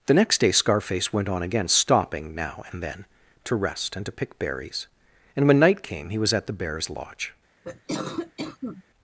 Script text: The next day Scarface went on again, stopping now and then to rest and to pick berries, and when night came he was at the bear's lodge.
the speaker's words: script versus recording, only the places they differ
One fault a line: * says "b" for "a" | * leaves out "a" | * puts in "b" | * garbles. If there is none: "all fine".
all fine